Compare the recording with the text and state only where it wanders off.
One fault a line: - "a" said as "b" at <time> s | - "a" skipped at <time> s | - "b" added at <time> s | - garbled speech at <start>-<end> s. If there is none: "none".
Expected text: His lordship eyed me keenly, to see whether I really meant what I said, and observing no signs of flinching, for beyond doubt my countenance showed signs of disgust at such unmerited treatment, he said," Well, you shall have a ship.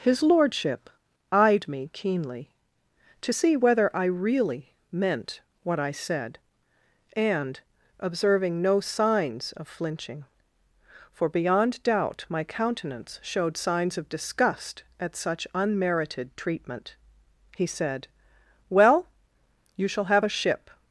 none